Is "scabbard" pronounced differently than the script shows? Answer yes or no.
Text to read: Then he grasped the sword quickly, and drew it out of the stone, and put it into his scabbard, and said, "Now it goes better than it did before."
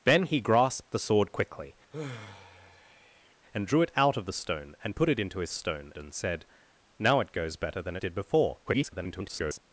yes